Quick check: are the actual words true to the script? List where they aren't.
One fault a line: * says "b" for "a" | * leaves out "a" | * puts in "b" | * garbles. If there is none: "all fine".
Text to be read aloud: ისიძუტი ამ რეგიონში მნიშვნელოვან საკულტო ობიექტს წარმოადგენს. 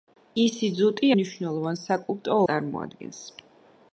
* leaves out "ამ რეგიონში"
* leaves out "ობიექტს"